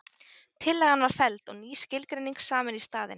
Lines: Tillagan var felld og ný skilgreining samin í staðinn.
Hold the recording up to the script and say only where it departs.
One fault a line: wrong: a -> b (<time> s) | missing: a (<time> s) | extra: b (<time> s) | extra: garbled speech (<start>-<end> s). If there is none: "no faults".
no faults